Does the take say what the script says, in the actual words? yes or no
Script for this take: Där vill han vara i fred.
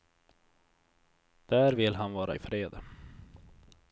yes